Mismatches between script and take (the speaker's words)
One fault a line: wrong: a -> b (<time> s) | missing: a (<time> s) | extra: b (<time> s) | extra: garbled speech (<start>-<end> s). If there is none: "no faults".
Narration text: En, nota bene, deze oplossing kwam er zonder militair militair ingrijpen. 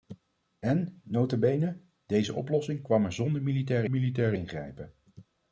no faults